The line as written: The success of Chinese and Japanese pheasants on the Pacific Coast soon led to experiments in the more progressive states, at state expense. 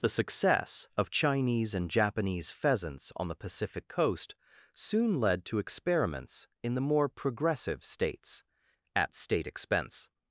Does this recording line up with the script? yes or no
yes